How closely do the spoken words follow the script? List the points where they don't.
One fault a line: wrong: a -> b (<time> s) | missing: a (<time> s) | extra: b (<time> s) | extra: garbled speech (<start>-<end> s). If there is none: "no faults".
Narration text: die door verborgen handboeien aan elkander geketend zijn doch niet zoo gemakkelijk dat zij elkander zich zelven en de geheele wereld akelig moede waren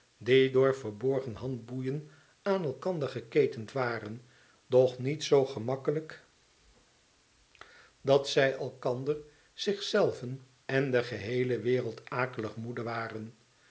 wrong: zijn -> waren (3.7 s)